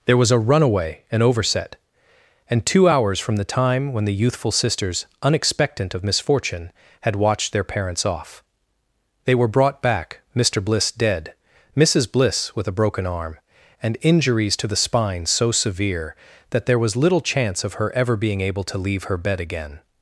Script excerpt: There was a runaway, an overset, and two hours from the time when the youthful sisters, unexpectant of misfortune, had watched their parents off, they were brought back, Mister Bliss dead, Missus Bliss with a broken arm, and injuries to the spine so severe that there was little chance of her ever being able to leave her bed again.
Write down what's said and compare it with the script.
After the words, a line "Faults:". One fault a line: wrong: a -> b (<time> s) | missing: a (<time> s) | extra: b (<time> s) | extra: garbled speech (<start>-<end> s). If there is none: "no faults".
There was a runaway, an overset, and two hours from the time when the youthful sisters, unexpectant of misfortune, had watched their parents off, they were brought back, Mister Bliss dead, Missus Bliss with a broken arm, and injuries to the spine so severe that there was little chance of her ever being able to leave her bed again.
Faults:
no faults